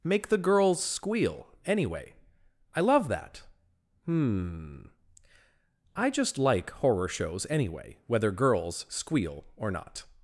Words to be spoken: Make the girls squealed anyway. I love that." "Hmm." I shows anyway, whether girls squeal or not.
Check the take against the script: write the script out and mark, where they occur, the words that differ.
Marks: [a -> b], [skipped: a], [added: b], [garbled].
Make the girls [squealed -> squeal] anyway. I love that." "Hmm." I [added: just like horror] shows anyway, whether girls squeal or not.